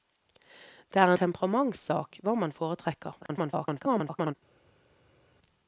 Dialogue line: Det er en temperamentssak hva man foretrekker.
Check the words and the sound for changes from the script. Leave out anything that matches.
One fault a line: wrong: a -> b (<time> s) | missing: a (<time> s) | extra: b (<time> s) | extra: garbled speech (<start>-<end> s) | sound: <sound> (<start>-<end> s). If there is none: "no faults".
missing: en (1.1 s)
extra: garbled speech (3.2-4.3 s)